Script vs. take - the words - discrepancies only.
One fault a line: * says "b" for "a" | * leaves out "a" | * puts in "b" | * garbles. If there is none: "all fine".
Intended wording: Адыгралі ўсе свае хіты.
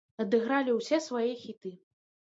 all fine